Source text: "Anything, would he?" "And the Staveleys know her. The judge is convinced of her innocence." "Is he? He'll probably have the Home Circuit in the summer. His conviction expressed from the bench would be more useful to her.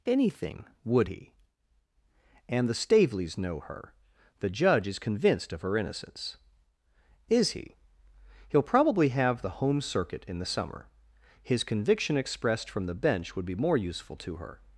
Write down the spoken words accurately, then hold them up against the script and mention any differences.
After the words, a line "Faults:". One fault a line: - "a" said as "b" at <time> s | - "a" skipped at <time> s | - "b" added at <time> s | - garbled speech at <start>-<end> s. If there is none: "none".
"Anything, would he?" "And the Staveleys know her. The judge is convinced of her innocence." "Is he? He'll probably have the Home Circuit in the summer. His conviction expressed from the bench would be more useful to her.
Faults:
none